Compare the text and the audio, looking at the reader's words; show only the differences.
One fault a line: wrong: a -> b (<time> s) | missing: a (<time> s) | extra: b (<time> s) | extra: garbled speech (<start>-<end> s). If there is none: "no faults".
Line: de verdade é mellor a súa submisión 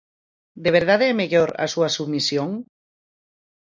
no faults